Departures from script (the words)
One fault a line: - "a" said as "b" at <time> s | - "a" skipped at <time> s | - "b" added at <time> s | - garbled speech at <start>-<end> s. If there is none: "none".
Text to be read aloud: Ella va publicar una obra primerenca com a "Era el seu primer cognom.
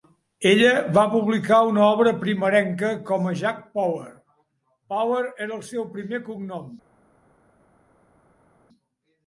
- "Jack Power Power" added at 3.4 s